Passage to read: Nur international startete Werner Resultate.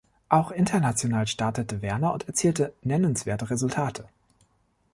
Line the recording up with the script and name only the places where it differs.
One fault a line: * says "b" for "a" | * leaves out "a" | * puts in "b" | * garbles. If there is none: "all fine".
* says "Auch" for "Nur"
* puts in "und erzielte nennenswerte"